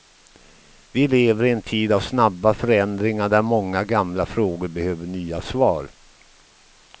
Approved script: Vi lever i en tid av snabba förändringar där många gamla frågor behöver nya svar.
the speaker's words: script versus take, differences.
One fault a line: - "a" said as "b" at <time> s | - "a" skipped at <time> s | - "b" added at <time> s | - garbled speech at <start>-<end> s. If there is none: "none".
none